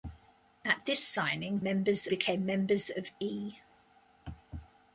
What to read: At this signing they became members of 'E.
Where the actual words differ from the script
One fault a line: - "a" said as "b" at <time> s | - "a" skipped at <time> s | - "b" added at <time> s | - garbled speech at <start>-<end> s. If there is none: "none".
- "they" said as "members" at 1.6 s